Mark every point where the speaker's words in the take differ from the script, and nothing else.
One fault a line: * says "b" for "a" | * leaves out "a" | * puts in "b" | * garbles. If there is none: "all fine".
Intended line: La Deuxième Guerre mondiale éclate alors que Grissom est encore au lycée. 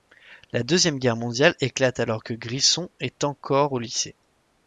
all fine